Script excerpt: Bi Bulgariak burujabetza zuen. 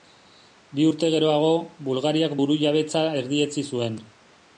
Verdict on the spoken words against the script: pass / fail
fail